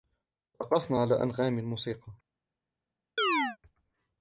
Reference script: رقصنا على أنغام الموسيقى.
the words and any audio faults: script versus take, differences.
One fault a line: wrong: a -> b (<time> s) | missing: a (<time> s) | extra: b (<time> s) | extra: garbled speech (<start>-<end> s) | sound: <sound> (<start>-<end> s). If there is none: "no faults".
sound: chirp (3.2-3.6 s)